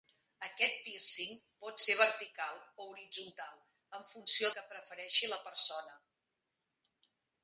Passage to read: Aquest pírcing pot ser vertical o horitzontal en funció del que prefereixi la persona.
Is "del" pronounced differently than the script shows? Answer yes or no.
yes